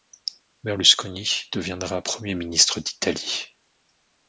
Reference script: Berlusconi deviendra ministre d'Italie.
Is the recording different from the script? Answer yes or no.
yes